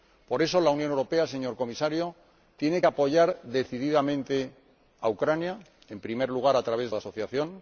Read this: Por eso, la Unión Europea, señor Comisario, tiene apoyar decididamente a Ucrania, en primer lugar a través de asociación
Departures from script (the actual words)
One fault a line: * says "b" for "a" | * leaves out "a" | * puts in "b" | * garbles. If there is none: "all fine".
all fine